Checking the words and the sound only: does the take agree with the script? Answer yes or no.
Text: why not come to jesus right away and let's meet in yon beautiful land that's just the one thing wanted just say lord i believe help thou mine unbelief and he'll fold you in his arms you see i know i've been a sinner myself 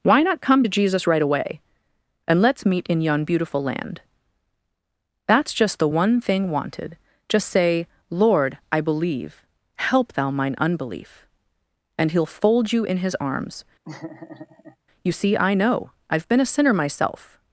no